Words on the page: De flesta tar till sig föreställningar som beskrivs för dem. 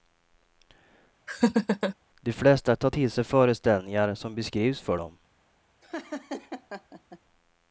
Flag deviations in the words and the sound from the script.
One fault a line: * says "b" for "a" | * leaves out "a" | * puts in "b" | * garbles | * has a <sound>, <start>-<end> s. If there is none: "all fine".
* has a laugh, 1.3-2.0 s
* has a laugh, 5.8-7.2 s